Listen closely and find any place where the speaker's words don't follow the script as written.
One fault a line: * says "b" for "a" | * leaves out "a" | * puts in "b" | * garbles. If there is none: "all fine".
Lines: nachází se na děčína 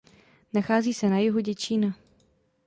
* puts in "jihu"